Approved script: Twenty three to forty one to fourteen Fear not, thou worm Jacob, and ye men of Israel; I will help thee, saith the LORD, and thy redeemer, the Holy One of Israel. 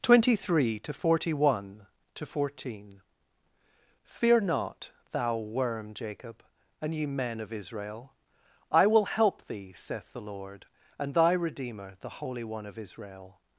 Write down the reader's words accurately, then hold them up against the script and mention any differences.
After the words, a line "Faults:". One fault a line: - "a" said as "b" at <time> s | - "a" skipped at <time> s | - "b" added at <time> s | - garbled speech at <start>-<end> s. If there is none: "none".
Twenty three to forty one to fourteen Fear not, thou worm Jacob, and ye men of Israel; I will help thee, saith the LORD, and thy redeemer, the Holy One of Israel.
Faults:
none